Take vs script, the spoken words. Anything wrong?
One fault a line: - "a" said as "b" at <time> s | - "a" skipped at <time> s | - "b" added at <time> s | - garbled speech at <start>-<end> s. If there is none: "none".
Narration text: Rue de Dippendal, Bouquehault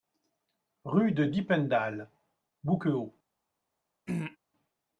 none